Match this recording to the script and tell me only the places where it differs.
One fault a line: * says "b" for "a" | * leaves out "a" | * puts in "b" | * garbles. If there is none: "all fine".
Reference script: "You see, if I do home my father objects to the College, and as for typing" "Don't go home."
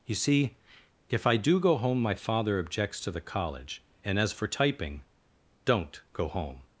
* puts in "go"